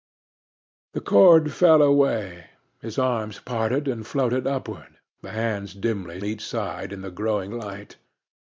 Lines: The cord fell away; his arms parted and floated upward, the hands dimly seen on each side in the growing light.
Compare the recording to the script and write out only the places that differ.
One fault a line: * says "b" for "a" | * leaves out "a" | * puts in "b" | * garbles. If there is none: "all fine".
* leaves out "seen on"